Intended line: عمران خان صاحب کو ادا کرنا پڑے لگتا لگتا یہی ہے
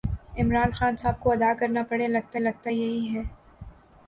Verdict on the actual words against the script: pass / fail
pass